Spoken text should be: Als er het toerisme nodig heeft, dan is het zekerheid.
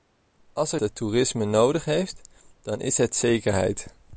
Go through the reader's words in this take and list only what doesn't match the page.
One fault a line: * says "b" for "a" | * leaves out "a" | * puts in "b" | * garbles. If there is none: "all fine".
all fine